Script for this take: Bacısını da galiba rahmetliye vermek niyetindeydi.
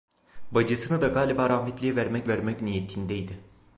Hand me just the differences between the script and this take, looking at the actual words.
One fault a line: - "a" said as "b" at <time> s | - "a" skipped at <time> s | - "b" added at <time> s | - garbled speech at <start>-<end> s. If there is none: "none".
- "vermek" added at 2.3 s